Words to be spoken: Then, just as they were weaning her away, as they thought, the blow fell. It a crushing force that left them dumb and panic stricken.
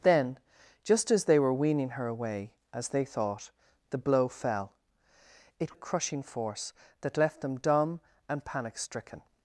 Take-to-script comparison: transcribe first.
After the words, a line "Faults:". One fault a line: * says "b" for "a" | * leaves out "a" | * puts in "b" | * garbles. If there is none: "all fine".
Then, just as they were weaning her away, as they thought, the blow fell. It a crushing force that left them dumb and panic stricken.
Faults:
all fine